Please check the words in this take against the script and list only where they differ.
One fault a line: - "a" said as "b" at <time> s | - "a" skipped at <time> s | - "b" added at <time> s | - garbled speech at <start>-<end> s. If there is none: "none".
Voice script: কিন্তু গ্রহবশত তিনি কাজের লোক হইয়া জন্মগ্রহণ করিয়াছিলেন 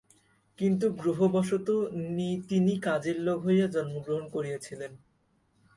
none